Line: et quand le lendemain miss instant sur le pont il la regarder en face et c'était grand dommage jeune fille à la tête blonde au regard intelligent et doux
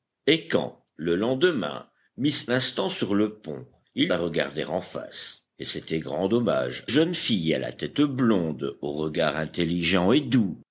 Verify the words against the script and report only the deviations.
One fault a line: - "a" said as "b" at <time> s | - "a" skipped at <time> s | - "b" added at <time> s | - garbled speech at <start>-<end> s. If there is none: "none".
none